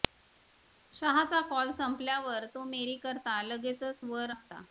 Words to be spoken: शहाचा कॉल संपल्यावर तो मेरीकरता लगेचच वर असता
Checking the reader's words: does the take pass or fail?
pass